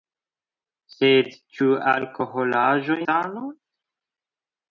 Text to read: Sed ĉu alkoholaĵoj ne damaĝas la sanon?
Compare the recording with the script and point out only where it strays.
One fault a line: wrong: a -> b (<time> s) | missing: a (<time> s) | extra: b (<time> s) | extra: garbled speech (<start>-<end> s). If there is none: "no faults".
missing: ne damaĝas la (3.0 s)